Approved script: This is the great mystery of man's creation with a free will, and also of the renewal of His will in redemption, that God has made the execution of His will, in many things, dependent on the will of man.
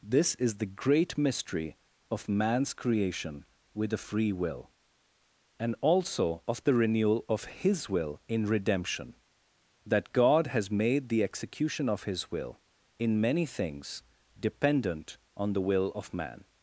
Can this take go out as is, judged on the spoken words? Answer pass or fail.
pass